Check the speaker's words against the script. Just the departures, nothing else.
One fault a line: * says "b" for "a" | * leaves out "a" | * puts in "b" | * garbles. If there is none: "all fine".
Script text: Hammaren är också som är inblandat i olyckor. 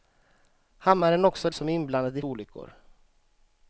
all fine